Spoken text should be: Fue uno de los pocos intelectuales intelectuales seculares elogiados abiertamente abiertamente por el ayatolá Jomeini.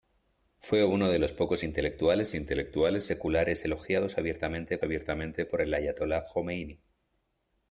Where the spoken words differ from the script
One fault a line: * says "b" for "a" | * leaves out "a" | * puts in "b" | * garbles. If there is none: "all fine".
all fine